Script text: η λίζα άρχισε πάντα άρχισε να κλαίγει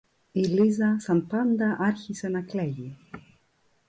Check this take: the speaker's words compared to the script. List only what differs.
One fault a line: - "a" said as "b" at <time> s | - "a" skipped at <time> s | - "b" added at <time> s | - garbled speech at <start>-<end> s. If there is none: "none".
- "άρχισε" said as "σαν" at 1.0 s